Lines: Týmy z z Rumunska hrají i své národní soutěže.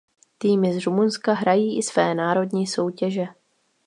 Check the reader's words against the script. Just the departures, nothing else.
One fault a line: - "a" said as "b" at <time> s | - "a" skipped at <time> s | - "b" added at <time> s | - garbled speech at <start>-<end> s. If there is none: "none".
- "z" skipped at 0.8 s